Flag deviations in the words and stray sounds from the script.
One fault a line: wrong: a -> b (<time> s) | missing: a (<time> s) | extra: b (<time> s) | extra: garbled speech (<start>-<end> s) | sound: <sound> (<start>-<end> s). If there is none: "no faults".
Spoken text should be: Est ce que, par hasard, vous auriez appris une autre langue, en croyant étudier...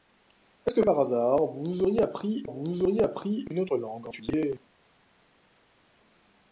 extra: vous auriez appris (2.4 s)
missing: croyant (4.1 s)